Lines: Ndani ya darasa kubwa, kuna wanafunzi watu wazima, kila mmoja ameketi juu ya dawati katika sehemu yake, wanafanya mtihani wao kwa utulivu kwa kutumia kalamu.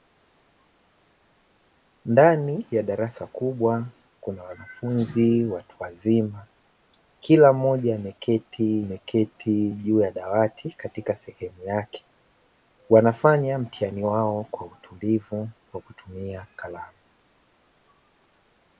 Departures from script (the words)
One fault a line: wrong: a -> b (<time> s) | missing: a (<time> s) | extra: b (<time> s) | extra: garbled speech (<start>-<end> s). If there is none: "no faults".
extra: ameketi (8.8 s)